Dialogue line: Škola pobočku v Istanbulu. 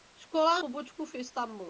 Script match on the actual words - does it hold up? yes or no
yes